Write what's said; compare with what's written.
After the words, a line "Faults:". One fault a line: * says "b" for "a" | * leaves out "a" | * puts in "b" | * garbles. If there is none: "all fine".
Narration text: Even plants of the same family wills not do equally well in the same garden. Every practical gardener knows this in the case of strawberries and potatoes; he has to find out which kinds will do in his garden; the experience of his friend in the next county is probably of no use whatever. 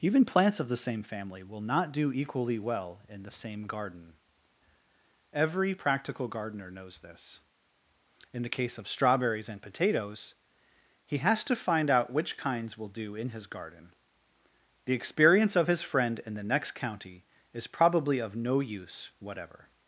Even plants of the same family will not do equally well in the same garden. Every practical gardener knows this in the case of strawberries and potatoes; he has to find out which kinds will do in his garden; the experience of his friend in the next county is probably of no use whatever.
Faults:
* says "will" for "wills"